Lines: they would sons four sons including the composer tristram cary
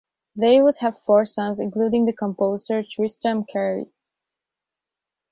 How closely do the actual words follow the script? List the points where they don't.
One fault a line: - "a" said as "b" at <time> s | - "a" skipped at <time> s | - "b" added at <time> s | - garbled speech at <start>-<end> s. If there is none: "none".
- "sons" said as "have" at 0.8 s